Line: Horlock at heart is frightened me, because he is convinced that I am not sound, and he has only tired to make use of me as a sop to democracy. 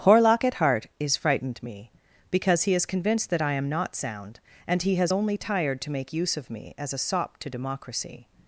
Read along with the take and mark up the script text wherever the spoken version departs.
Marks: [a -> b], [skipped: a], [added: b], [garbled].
Horlock at heart is frightened me, because he is convinced that I am not sound, and he has only tired to make use of me as a sop to democracy.